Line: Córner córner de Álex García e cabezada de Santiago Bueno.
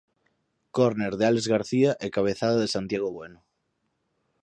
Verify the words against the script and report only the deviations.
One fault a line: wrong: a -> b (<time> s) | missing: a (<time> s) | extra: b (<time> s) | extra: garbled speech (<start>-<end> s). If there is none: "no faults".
missing: córner (1.1 s)